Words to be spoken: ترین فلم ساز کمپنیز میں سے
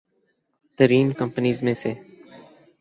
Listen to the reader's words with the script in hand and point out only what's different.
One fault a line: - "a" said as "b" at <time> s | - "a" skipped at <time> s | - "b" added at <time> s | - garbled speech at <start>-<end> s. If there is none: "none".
- "فلم ساز" skipped at 1.1 s